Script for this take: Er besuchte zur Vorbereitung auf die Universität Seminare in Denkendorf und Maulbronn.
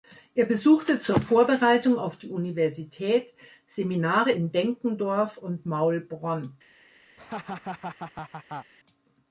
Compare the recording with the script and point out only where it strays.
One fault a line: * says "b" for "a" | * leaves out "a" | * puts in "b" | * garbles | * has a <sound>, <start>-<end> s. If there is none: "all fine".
* has a laugh, 7.2-8.7 s